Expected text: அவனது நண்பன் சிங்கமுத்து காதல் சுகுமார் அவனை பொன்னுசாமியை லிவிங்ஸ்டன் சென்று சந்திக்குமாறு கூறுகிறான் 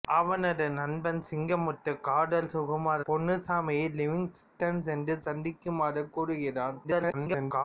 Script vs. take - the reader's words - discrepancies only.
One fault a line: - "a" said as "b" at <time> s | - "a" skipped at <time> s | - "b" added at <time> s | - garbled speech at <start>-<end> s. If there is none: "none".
- "அவனை" skipped at 3.0 s
- garbled speech at 6.8-7.6 s